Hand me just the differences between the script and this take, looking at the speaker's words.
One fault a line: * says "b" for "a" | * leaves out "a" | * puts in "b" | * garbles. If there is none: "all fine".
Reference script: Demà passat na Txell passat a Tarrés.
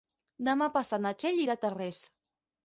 * says "irà" for "passat"